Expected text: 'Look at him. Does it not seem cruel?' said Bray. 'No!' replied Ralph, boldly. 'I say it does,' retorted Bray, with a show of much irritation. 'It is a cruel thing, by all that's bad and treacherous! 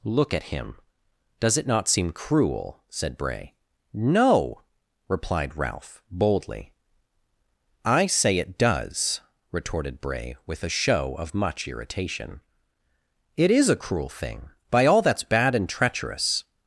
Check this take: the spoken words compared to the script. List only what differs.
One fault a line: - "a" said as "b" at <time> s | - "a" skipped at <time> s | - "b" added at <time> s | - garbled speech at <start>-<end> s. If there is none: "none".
none